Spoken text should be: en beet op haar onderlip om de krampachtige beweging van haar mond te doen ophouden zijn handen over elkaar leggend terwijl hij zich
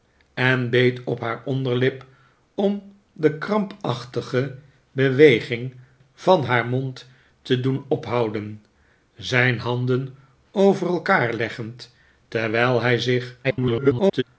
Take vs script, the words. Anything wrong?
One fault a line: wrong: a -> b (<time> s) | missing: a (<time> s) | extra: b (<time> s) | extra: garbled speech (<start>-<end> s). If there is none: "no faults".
extra: garbled speech (13.4-14.2 s)